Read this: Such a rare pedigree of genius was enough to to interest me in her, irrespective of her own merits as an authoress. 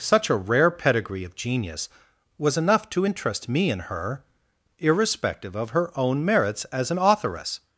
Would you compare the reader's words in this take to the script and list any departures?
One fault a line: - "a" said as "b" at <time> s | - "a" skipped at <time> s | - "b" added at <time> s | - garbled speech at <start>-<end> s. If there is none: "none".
- "to" skipped at 3.0 s